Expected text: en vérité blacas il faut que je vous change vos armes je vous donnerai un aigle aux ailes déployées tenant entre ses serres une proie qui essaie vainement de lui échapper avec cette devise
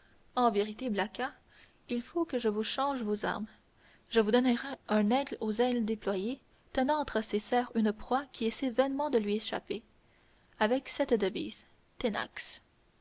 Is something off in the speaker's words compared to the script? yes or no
no